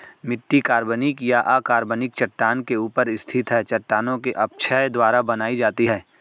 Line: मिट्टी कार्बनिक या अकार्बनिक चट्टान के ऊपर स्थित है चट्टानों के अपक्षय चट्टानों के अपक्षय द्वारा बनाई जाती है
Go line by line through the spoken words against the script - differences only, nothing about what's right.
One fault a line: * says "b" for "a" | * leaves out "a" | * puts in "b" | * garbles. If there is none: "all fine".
* leaves out "चट्टानों के अपक्षय"